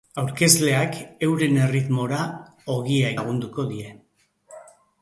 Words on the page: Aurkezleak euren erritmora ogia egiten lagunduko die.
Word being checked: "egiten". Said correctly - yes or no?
no